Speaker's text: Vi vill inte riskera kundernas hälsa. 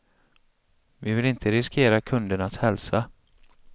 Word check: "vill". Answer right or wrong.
right